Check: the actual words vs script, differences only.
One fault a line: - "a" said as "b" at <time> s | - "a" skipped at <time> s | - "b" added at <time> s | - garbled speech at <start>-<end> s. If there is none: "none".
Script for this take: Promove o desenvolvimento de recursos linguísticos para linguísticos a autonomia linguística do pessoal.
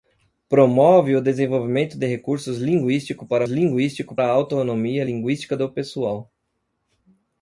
none